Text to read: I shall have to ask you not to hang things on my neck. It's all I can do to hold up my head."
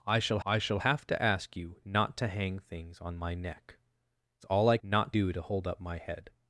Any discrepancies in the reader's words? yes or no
yes